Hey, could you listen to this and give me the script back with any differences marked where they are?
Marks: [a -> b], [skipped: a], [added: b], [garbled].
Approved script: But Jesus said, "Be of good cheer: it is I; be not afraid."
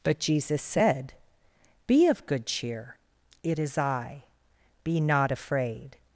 But Jesus said, "Be of good cheer: it is I; be not afraid."